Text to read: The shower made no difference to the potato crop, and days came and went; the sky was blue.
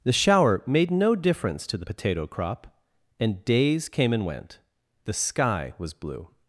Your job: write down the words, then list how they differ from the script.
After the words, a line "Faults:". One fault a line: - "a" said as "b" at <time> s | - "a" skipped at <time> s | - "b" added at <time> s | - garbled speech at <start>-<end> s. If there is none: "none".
The shower made no difference to the potato crop, and days came and went; the sky was blue.
Faults:
none